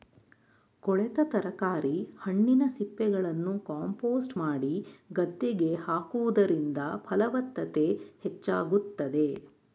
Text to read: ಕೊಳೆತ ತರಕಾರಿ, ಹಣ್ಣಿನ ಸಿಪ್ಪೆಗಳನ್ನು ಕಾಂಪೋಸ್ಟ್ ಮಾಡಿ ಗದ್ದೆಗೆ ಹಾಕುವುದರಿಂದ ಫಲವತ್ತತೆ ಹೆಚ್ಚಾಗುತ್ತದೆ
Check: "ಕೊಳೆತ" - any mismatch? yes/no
no